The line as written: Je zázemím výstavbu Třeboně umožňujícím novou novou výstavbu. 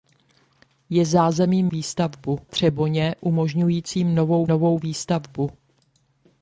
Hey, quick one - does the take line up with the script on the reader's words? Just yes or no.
yes